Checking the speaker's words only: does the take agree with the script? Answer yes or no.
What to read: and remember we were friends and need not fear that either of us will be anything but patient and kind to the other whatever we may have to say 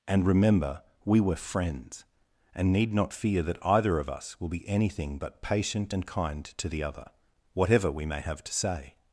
yes